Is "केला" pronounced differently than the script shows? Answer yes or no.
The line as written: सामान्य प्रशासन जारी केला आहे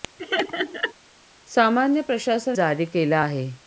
no